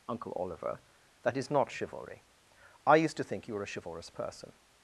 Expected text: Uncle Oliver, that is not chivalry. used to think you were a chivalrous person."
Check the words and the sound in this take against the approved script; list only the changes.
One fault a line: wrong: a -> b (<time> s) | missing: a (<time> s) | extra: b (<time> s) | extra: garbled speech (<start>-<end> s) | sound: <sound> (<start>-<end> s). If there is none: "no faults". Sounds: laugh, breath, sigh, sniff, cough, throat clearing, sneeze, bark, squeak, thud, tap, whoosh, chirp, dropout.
extra: I (2.9 s)